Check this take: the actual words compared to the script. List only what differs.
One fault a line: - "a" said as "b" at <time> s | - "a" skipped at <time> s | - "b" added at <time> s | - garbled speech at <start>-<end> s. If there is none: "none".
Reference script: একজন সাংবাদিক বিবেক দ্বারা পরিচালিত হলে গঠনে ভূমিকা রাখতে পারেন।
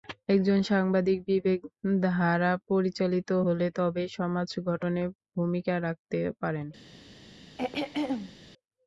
- "তবেই সমাজ" added at 3.8 s